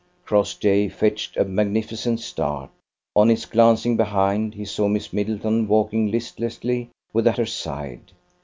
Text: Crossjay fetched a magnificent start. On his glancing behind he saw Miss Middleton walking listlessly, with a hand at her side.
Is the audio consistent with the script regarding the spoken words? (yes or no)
no